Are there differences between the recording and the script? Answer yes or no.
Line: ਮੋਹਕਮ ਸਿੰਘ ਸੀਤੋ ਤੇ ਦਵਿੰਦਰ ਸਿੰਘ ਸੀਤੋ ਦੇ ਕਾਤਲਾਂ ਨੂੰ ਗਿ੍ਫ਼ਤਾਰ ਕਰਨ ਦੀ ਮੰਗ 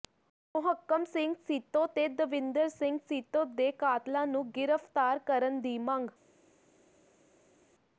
no